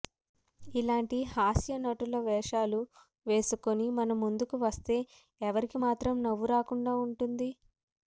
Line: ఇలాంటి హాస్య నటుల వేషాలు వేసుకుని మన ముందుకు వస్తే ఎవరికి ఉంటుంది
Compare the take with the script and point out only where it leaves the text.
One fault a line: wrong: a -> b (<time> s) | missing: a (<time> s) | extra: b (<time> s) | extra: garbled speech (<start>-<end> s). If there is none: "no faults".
extra: మాత్రం నవ్వు రాకుండా (5.8 s)